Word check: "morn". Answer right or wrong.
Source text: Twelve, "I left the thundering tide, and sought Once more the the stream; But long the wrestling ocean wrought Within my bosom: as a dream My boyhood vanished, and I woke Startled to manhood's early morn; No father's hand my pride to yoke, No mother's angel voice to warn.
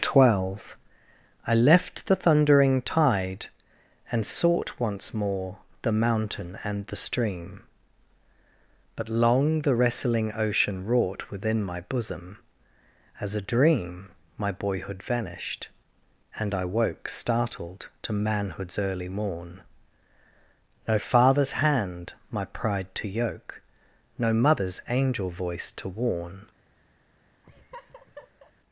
right